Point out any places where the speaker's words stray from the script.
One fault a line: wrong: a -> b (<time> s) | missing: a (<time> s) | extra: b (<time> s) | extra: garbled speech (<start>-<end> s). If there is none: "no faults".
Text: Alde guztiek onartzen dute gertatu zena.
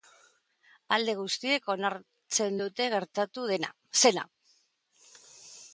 no faults